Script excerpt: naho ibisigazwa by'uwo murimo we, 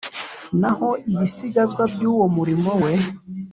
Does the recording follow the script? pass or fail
pass